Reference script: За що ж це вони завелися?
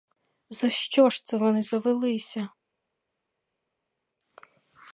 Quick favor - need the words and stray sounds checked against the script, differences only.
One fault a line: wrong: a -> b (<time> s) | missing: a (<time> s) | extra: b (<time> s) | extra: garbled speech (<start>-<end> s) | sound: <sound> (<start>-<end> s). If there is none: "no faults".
no faults